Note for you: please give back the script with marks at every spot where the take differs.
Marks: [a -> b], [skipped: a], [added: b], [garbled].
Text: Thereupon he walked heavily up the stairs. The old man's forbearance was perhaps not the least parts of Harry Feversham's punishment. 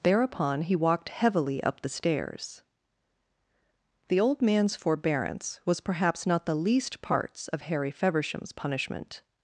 Thereupon he walked heavily up the stairs. The old man's forbearance was perhaps not the least parts of Harry Feversham's punishment.